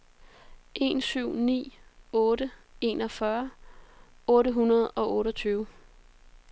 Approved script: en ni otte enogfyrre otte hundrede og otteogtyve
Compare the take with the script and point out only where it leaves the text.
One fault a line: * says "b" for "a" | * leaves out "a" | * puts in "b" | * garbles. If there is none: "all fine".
* puts in "syv"